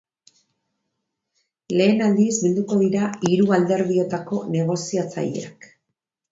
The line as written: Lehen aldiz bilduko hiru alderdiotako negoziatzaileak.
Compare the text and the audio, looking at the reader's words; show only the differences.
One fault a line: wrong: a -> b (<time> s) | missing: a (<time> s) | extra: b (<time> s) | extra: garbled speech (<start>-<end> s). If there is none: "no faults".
extra: dira (2.9 s)